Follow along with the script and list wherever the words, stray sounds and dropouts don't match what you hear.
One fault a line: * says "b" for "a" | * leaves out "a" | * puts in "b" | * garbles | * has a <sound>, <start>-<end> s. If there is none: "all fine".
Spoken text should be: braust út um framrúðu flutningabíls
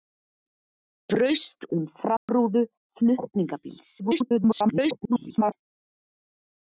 * leaves out "út"
* has a dropout, 2.2-2.3 s
* garbles